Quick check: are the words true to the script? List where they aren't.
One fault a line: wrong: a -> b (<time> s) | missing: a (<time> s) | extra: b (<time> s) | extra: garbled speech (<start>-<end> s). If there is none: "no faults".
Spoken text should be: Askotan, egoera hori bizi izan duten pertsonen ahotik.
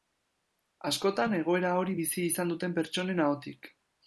no faults